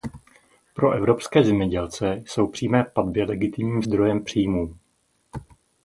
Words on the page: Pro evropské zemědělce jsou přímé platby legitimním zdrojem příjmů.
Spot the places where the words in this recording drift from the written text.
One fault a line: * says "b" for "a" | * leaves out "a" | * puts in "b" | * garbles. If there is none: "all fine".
all fine